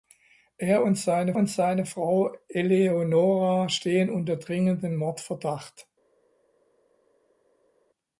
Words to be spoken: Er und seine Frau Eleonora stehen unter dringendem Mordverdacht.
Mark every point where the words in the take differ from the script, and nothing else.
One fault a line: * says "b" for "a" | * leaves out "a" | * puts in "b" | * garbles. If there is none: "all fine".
* puts in "und seine"